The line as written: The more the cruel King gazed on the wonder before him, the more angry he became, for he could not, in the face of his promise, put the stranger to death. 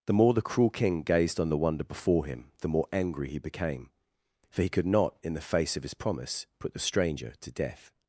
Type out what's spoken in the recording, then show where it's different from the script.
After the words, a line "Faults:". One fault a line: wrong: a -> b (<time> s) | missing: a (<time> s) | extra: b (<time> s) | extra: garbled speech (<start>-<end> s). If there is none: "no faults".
The more the cruel King gazed on the wonder before him, the more angry he became, for he could not, in the face of his promise, put the stranger to death.
Faults:
no faults